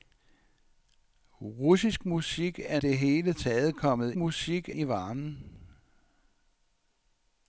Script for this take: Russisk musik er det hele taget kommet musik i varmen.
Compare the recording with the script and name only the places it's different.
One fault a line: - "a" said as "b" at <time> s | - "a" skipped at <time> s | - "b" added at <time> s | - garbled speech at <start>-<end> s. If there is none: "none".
none